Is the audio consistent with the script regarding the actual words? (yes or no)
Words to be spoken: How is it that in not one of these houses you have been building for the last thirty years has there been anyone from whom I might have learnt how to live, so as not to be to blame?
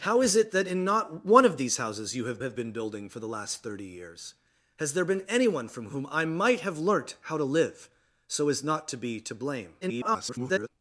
no